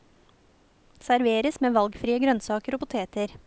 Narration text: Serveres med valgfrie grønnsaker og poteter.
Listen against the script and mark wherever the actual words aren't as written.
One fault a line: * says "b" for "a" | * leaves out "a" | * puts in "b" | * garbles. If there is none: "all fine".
all fine